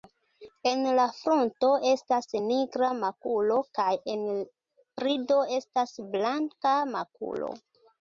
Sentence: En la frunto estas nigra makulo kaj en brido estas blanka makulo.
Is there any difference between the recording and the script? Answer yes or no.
no